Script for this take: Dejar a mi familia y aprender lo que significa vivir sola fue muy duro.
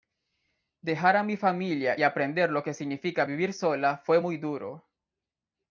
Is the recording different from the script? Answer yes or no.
no